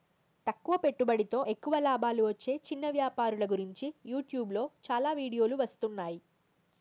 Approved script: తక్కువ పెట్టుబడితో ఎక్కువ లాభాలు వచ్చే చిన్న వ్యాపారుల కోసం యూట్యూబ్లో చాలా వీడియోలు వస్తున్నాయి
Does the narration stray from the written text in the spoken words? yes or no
yes